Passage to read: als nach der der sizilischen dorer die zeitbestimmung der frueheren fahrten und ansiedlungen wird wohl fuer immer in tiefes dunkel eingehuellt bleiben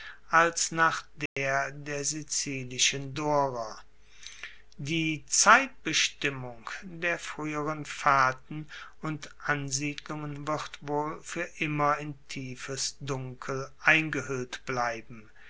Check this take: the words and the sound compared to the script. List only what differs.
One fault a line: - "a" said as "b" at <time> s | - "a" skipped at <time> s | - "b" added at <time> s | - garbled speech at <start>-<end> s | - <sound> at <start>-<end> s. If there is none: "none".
- dropout at 1.3-1.4 s